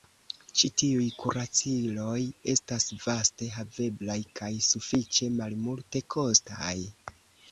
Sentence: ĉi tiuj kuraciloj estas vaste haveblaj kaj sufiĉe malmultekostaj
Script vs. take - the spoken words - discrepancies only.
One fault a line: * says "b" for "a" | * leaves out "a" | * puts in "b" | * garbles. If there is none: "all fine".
all fine